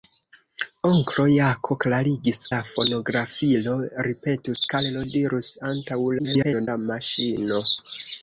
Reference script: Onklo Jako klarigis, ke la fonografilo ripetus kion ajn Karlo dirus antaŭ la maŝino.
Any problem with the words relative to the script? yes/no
yes